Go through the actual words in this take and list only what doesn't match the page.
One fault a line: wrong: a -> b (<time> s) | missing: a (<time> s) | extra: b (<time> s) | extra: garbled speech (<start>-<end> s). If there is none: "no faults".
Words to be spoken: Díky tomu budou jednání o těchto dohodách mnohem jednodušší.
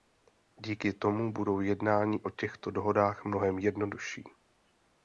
no faults